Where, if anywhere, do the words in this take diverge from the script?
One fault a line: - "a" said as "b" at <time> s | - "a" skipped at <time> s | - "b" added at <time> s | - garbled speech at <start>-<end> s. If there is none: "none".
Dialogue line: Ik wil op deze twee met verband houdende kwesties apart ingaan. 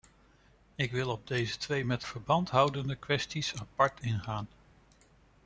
none